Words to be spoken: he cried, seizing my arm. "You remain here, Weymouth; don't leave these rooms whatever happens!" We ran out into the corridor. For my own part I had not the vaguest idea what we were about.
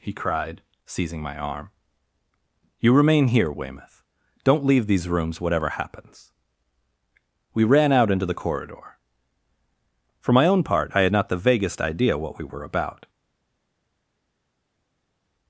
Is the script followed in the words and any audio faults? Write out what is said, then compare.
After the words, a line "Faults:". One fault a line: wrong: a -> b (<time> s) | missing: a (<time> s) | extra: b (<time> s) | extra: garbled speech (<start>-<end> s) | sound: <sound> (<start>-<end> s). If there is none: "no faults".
he cried, seizing my arm. "You remain here, Weymouth; don't leave these rooms whatever happens!" We ran out into the corridor. For my own part I had not the vaguest idea what we were about.
Faults:
no faults